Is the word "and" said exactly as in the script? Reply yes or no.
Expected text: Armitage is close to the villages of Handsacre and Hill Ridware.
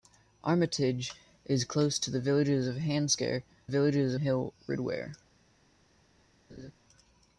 no